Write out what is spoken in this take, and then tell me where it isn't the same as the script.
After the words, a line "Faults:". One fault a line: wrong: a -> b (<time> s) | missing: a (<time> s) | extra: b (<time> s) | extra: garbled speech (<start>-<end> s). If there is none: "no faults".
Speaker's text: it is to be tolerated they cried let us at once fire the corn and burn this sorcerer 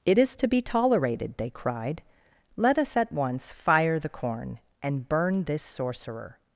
it is to be tolerated they cried let us at once fire the corn and burn this sorcerer
Faults:
no faults